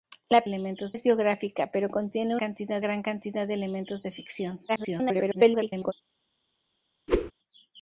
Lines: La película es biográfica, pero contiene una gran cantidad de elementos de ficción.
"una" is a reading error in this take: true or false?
true